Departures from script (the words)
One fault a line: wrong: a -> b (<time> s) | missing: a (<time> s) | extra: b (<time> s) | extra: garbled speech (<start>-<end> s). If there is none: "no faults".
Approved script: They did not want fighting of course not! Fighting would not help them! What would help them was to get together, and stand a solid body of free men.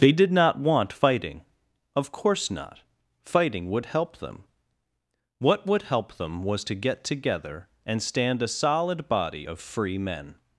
missing: not (3.9 s)